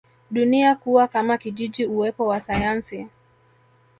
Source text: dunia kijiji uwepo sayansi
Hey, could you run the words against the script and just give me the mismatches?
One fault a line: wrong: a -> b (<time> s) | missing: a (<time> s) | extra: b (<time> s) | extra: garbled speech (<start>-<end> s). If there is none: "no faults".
extra: kuwa kama (0.8 s)
extra: wa (2.3 s)